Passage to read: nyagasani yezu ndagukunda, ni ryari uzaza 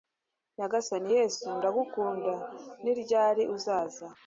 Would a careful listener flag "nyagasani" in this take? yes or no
no